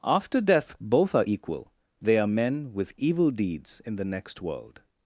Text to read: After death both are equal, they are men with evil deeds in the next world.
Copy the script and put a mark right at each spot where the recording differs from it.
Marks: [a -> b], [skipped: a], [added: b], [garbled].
After death both are equal, they are men with evil deeds in the next world.